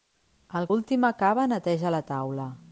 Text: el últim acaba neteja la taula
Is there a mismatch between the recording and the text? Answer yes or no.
no